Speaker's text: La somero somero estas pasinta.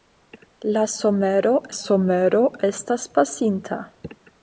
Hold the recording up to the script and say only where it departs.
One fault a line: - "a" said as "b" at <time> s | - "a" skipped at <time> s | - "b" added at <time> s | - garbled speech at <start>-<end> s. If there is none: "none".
none